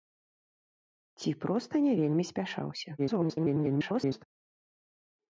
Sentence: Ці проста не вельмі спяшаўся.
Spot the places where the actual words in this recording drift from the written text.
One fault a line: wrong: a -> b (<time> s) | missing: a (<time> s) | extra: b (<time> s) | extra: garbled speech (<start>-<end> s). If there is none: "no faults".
extra: garbled speech (3.0-4.2 s)